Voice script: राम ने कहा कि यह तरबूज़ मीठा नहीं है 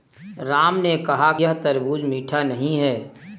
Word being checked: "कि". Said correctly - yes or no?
no